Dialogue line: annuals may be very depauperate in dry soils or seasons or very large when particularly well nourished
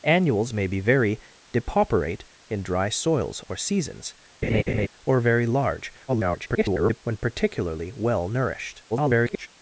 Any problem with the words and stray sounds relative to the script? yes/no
yes